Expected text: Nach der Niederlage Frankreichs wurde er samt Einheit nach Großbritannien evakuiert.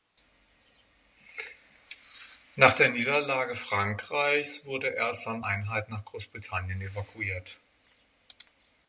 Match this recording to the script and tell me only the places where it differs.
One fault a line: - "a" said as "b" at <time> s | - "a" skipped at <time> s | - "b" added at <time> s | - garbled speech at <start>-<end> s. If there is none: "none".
none